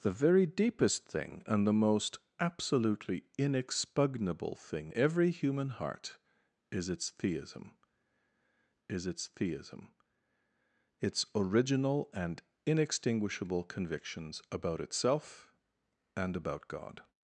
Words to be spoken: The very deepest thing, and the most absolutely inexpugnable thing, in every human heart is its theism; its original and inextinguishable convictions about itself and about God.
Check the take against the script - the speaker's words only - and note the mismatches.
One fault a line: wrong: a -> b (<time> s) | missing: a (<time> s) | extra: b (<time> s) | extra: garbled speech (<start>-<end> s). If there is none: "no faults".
missing: in (4.9 s)
extra: is its theism (8.9 s)